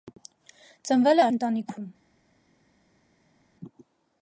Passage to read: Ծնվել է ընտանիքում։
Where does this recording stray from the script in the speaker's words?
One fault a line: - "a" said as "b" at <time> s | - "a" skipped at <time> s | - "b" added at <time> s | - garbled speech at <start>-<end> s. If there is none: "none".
none